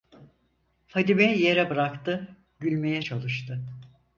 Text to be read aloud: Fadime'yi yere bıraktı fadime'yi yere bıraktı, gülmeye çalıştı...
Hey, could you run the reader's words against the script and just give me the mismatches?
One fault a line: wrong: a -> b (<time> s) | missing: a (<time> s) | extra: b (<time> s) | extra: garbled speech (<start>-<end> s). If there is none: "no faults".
missing: fadime'yi yere bıraktı (2.4 s)